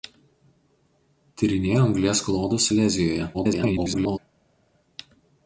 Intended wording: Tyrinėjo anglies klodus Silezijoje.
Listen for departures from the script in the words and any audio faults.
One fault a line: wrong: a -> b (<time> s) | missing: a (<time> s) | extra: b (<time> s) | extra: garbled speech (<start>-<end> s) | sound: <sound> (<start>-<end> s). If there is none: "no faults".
extra: garbled speech (3.3-4.2 s)